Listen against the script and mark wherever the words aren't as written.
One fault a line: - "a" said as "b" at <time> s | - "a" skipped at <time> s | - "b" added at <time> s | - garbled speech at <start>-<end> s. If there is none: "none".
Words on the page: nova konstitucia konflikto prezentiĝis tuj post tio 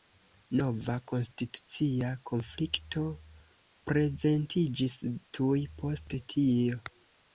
none